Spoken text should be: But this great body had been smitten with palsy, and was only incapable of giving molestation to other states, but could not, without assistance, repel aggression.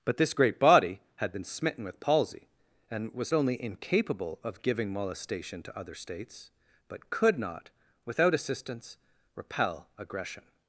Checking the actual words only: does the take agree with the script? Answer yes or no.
yes